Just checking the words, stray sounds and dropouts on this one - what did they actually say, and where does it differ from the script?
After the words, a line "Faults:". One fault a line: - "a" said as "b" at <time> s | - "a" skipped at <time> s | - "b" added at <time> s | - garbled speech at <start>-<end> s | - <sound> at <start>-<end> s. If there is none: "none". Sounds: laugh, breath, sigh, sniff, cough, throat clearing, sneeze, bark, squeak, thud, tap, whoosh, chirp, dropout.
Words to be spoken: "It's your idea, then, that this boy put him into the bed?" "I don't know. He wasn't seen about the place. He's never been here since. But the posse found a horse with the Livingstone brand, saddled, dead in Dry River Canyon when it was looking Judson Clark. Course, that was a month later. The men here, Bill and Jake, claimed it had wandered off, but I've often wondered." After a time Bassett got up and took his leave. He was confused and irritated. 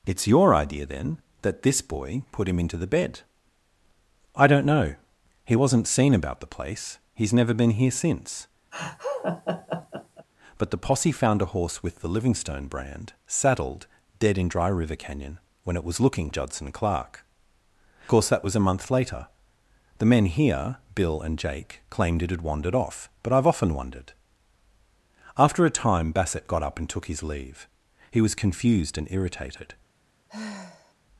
"It's your idea, then, that this boy put him into the bed?" "I don't know. He wasn't seen about the place. He's never been here since. But the posse found a horse with the Livingstone brand, saddled, dead in Dry River Canyon when it was looking Judson Clark. Course, that was a month later. The men here, Bill and Jake, claimed it had wandered off, but I've often wondered." After a time Bassett got up and took his leave. He was confused and irritated.
Faults:
- laugh at 8.7-10.3 s
- sigh at 30.3-30.9 s